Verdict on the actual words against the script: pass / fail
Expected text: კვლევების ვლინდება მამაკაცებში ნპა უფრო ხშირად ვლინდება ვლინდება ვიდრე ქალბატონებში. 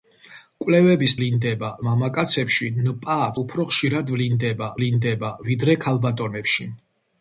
pass